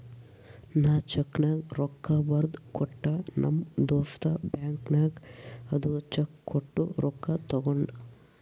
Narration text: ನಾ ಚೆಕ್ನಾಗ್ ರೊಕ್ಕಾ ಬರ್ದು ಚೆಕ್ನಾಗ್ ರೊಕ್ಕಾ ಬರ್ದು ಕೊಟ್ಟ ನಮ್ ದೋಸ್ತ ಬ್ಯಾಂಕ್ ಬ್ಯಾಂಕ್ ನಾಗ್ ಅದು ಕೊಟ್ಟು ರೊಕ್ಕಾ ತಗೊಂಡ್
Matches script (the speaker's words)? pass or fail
fail